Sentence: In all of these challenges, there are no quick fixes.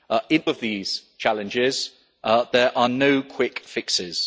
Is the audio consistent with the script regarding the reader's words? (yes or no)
no